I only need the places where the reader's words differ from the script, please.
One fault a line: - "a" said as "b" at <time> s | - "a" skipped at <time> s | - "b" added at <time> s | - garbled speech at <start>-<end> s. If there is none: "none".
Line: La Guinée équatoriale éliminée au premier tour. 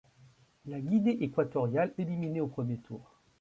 none